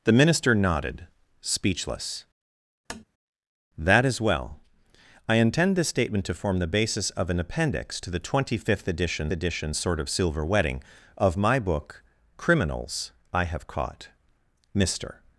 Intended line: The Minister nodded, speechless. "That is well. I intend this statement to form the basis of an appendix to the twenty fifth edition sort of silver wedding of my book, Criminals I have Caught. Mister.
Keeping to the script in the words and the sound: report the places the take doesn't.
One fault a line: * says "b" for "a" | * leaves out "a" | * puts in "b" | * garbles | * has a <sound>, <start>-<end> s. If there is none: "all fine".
* has a tap, 2.9-3.0 s
* puts in "edition"